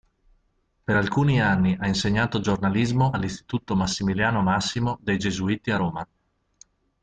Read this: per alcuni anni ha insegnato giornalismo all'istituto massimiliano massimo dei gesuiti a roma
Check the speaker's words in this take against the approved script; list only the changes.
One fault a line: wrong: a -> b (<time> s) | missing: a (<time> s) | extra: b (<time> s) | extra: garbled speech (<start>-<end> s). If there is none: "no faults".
no faults